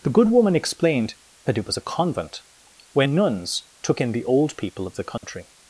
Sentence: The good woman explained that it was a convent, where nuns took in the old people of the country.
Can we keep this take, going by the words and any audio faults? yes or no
no